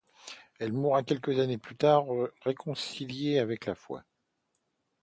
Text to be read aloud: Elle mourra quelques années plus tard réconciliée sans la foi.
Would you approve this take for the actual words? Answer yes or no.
no